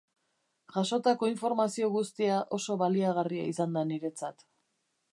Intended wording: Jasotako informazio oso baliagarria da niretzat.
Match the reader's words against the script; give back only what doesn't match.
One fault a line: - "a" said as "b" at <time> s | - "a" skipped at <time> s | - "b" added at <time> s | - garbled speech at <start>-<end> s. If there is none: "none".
- "guztia" added at 2.0 s
- "izan" added at 3.5 s